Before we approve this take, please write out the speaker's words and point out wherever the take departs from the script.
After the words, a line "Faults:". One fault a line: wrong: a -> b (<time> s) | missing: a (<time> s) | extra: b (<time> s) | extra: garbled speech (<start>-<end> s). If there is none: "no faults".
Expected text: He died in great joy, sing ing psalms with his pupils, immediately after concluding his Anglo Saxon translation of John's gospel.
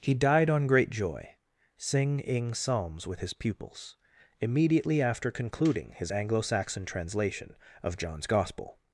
He died on great joy, sing ing psalms with his pupils, immediately after concluding his Anglo Saxon translation of John's gospel.
Faults:
wrong: in -> on (0.5 s)